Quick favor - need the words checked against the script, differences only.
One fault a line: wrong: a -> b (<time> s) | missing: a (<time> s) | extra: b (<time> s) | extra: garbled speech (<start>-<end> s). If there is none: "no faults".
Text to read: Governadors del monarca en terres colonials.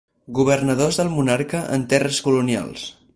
no faults